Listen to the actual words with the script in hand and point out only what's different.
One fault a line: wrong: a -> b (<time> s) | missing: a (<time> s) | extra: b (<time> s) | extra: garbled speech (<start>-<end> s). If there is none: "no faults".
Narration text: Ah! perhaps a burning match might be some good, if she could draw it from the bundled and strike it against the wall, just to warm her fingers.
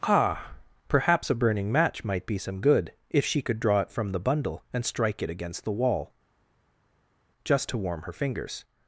wrong: bundled -> bundle (4.2 s)